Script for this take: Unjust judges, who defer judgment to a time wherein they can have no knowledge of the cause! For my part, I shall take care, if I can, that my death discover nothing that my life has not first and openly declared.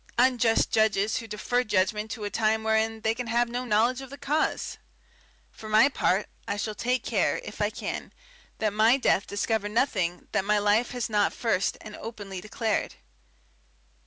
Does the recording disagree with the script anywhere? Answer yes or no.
no